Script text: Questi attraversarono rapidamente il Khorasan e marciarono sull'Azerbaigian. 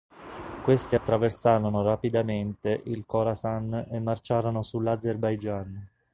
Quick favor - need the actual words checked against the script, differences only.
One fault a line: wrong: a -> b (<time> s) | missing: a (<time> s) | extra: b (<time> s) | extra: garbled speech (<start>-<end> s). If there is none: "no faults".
no faults